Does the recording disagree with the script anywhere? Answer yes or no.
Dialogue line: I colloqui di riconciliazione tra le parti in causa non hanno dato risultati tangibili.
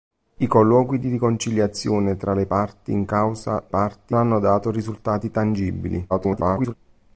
yes